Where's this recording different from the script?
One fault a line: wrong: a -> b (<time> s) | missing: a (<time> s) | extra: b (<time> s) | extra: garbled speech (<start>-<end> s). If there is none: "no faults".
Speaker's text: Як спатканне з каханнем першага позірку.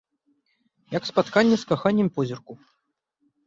missing: першага (2.1 s)